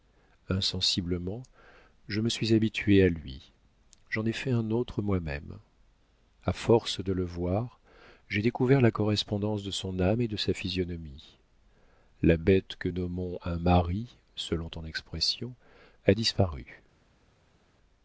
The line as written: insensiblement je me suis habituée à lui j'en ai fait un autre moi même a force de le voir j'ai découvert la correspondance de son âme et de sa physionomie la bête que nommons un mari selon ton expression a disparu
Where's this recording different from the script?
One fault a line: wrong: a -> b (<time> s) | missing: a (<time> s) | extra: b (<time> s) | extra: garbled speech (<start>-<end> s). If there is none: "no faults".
no faults